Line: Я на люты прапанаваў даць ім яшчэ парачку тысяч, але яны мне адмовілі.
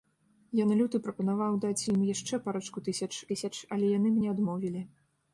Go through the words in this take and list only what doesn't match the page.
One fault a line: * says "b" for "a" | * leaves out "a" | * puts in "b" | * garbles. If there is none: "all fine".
* puts in "тысяч"